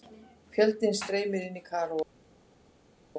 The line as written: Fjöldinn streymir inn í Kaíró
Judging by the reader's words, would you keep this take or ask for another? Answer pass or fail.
pass